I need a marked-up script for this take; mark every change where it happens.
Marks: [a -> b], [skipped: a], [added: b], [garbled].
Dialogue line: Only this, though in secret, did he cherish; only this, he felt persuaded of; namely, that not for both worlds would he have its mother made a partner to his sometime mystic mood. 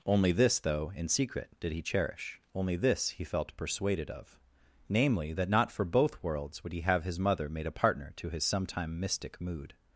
Only this, though in secret, did he cherish; only this, he felt persuaded of; namely, that not for both worlds would he have [its -> his] mother made a partner to his sometime mystic mood.